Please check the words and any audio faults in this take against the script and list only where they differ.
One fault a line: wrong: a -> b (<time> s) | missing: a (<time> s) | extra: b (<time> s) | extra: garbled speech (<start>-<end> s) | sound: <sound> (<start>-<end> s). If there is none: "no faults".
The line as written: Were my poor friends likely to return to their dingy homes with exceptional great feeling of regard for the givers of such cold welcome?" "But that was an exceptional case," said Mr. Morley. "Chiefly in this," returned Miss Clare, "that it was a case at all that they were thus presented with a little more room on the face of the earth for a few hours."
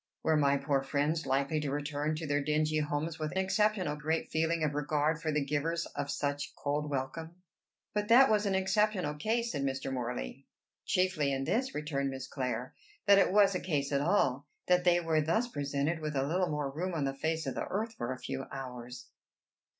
no faults